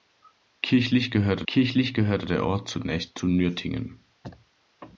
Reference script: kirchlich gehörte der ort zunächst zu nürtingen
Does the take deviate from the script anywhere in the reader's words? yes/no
yes